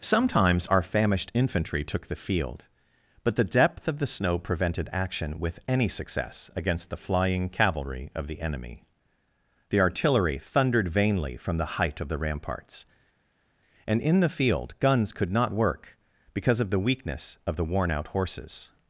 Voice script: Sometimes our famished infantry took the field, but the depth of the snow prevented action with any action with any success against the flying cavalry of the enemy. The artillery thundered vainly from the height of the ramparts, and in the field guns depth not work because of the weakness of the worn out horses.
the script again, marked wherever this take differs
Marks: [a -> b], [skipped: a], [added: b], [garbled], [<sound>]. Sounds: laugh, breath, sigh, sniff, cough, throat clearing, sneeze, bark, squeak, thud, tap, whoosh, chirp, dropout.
Sometimes our famished infantry took the field, but the depth of the snow prevented action with any [skipped: action with any] success against the flying cavalry of the enemy. The artillery thundered vainly from the height of the ramparts, and in the field guns [depth -> could] not work because of the weakness of the worn out horses.